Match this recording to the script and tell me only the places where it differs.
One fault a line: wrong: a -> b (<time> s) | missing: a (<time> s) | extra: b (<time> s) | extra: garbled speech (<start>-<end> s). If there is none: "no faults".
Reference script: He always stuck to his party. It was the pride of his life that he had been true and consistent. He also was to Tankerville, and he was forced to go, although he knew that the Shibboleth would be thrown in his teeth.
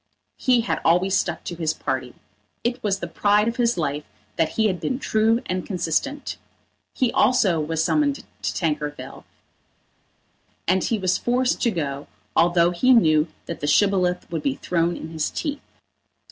extra: had (0.6 s)
extra: summoned (7.8 s)